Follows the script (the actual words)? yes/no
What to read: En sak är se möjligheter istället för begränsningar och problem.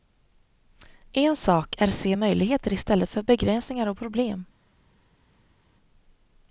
yes